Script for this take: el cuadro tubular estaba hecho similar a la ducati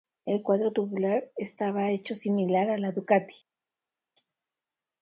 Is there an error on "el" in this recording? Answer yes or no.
no